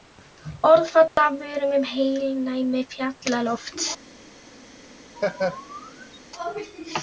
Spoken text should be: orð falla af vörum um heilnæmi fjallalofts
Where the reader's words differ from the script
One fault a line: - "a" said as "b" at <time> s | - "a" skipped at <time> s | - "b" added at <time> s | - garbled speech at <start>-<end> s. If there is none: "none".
none